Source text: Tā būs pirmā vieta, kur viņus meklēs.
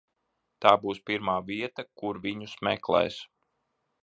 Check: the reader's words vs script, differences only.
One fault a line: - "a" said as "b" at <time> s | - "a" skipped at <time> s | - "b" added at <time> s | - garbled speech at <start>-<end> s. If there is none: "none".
none